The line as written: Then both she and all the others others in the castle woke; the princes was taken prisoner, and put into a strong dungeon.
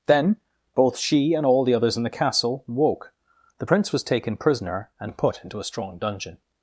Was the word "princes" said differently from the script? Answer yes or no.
yes